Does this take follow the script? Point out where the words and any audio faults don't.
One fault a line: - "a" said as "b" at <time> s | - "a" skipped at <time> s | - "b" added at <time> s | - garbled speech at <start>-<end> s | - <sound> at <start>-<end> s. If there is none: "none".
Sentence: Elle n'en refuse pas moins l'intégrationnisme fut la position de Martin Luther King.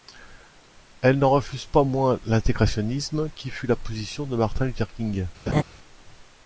- "qui" added at 3.4 s
- laugh at 5.5-5.6 s